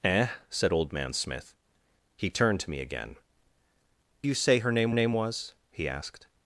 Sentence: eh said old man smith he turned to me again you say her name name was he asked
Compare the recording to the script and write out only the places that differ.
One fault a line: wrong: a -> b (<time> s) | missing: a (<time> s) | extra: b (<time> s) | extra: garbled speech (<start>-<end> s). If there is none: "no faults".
no faults